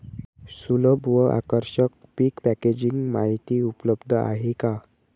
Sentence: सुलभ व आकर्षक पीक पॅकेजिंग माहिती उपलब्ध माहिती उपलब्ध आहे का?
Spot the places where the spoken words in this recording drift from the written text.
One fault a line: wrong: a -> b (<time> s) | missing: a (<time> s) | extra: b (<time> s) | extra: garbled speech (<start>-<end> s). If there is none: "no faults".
missing: माहिती उपलब्ध (4.1 s)